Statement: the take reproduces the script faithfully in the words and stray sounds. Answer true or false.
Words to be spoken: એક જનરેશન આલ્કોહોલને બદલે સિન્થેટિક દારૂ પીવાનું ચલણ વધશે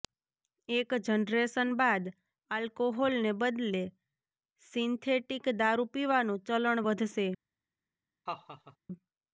false